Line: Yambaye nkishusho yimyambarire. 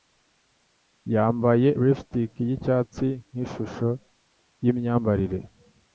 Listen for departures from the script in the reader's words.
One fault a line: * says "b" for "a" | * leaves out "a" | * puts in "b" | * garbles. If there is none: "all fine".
* puts in "lipstick yicyatsi"